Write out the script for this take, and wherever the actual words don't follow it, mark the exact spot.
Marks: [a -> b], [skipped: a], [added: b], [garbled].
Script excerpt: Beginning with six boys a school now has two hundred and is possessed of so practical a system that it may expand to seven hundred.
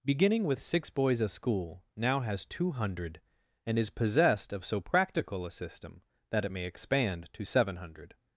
Beginning with six boys a school now has two hundred and is possessed of so practical a system that it may expand to seven hundred.